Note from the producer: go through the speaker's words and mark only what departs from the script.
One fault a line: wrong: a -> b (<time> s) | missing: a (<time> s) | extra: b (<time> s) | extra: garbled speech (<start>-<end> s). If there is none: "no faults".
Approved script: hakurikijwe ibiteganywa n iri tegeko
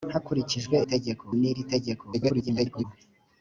wrong: ibiteganywa -> tegeko (0.9 s)
extra: garbled speech (2.1-2.8 s)